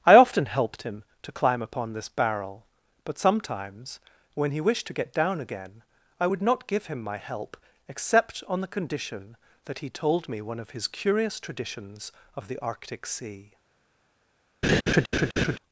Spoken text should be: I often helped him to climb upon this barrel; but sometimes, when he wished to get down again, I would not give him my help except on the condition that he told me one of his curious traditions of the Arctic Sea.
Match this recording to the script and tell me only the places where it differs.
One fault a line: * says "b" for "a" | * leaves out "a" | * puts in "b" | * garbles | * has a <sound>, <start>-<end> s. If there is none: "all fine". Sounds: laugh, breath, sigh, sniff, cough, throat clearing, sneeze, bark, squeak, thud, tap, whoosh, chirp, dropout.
* has a laugh, 14.6-15.6 s